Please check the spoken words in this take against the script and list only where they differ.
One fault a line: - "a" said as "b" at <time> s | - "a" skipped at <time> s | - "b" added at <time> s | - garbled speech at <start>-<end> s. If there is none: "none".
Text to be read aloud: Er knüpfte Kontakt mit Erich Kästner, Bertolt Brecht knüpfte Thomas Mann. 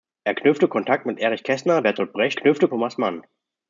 none